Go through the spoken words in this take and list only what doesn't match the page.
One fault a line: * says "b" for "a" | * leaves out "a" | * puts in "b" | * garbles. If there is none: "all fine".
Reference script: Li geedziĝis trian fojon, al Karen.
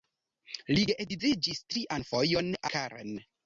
* leaves out "al"